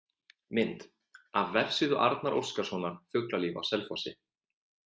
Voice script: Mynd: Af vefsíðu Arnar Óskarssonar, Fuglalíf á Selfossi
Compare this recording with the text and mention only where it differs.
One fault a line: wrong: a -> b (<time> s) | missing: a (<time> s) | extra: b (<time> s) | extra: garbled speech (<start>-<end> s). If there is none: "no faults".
no faults